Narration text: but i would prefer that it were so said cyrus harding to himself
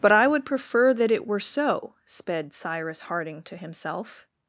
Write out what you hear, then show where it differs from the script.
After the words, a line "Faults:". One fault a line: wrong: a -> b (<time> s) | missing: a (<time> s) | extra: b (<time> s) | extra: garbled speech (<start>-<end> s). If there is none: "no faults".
but i would prefer that it were so sped cyrus harding to himself
Faults:
wrong: said -> sped (2.0 s)